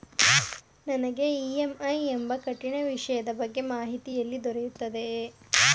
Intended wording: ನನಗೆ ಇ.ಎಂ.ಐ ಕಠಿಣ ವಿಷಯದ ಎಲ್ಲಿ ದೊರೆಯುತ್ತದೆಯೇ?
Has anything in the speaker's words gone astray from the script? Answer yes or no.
yes